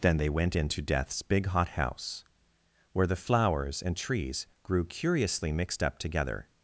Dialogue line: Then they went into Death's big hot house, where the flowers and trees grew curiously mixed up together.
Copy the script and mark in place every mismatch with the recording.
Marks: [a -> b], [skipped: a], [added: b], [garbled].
Then they went into Death's big hot house, where the flowers and trees grew curiously mixed up together.